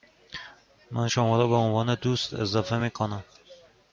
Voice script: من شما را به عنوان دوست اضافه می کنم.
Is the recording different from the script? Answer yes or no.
no